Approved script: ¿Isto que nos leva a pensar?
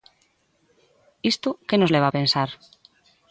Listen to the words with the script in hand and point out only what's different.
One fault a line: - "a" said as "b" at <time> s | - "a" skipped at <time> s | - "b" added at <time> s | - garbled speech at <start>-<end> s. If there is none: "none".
none